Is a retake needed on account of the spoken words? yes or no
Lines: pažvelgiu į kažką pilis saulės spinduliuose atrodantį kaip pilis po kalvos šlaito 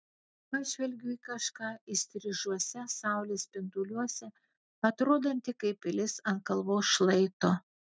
yes